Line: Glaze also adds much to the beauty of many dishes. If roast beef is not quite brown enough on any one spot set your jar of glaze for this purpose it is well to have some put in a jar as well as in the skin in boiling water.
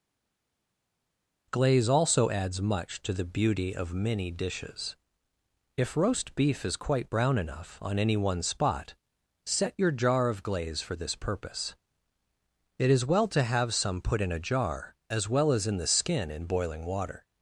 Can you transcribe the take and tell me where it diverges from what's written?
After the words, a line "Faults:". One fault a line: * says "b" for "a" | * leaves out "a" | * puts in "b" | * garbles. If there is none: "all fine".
Glaze also adds much to the beauty of many dishes. If roast beef is quite brown enough on any one spot set your jar of glaze for this purpose it is well to have some put in a jar as well as in the skin in boiling water.
Faults:
* leaves out "not"